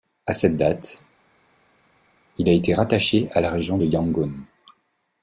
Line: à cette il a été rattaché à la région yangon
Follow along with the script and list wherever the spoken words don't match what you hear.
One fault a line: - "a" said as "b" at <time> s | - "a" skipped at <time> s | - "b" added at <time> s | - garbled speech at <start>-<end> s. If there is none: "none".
- "date" added at 0.6 s
- "de" added at 3.7 s